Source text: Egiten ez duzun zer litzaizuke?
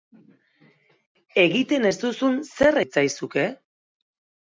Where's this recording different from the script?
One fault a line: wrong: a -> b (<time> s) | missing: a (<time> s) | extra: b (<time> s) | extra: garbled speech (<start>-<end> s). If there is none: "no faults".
no faults